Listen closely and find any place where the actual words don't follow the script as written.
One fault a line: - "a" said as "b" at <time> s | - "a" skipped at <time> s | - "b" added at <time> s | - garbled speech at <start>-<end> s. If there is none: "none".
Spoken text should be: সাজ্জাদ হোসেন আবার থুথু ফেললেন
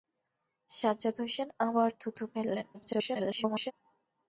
- garbled speech at 2.7-3.7 s